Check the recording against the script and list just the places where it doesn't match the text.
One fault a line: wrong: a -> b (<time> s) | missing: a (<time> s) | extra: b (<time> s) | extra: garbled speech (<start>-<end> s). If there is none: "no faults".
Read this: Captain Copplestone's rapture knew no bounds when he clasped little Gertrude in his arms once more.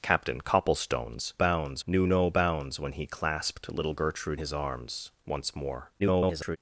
wrong: rapture -> bounds (1.4 s)
missing: in (4.4 s)
extra: garbled speech (6.0-6.6 s)